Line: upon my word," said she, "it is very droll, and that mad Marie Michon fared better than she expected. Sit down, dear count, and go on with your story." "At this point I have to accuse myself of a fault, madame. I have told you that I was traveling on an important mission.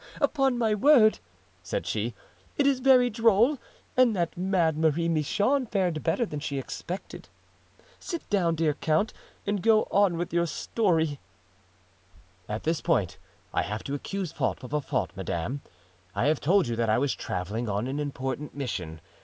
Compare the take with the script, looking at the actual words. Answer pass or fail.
fail